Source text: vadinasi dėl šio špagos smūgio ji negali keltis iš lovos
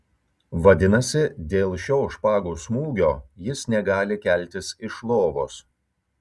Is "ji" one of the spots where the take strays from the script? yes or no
yes